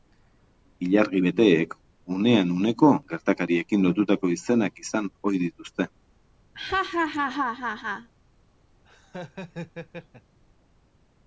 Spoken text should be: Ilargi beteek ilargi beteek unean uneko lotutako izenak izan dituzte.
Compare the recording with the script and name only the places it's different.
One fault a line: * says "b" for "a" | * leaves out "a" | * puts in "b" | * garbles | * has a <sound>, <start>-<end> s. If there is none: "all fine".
* leaves out "ilargi beteek"
* puts in "gertakariekin"
* puts in "ohi"
* has a laugh, 6.5-8.1 s
* has a laugh, 8.8-10.4 s